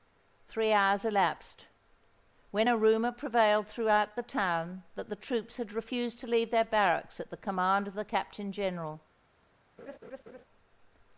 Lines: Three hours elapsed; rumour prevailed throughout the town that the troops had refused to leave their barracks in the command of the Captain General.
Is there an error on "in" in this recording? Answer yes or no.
yes